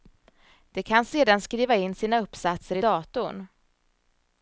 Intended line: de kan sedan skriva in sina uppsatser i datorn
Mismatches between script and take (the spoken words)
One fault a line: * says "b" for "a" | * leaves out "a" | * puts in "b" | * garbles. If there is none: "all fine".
all fine